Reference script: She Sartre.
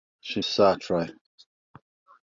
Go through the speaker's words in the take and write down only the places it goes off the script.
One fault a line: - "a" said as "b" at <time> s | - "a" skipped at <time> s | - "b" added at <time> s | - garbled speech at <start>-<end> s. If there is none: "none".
none